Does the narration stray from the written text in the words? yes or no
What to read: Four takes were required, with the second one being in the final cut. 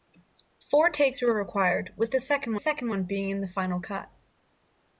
yes